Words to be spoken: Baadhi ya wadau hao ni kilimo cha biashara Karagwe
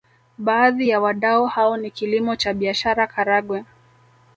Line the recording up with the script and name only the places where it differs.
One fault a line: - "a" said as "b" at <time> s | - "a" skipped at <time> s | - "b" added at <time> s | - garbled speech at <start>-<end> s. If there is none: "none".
none